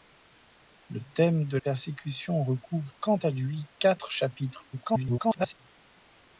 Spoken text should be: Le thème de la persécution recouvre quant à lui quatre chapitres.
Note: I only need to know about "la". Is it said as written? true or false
false